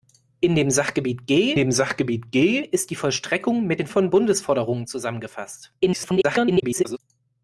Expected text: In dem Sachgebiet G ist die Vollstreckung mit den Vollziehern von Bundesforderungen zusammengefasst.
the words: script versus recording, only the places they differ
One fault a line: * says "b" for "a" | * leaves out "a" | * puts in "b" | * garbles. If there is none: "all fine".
* puts in "dem Sachgebiet G"
* leaves out "Vollziehern"
* garbles